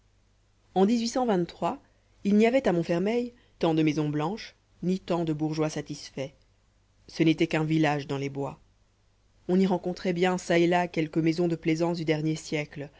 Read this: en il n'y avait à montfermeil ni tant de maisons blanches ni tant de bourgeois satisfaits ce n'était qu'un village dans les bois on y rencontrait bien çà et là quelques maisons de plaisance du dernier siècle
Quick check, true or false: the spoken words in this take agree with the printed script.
false